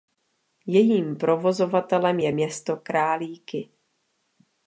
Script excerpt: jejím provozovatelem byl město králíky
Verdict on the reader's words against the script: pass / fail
fail